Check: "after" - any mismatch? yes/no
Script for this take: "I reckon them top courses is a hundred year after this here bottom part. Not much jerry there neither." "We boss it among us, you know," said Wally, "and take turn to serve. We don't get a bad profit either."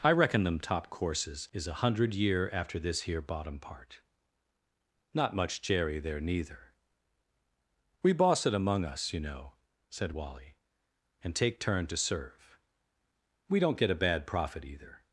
no